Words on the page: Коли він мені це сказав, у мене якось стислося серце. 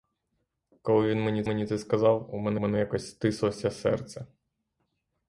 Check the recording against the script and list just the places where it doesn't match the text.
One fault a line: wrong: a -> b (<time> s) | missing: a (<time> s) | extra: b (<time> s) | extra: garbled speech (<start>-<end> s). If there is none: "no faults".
extra: мені (1.5 s)
extra: мене (2.5 s)